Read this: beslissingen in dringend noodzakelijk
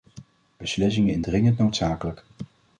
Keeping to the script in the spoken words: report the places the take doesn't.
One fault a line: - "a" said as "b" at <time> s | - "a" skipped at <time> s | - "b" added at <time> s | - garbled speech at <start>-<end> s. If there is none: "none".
none